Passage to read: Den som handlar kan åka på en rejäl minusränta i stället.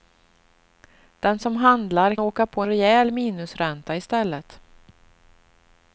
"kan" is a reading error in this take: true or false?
true